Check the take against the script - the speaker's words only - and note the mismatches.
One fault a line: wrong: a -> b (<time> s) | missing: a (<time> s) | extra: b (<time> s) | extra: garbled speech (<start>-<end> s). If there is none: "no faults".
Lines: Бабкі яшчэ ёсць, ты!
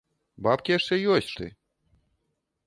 no faults